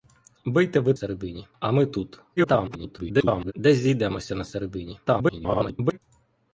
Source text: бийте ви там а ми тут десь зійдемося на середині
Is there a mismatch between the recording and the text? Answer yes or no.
yes